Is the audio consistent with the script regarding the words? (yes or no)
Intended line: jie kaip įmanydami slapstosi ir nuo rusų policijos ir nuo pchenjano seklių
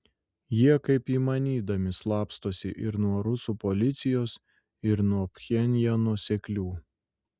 yes